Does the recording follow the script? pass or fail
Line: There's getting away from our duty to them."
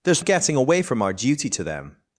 pass